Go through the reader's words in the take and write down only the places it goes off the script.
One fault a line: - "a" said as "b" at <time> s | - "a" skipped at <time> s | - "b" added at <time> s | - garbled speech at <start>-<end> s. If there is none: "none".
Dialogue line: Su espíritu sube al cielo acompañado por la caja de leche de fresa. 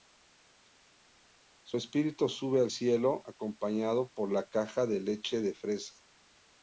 none